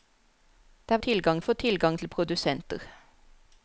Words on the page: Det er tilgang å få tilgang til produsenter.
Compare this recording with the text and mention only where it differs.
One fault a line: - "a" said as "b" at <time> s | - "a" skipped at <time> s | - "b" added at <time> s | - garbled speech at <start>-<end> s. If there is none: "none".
none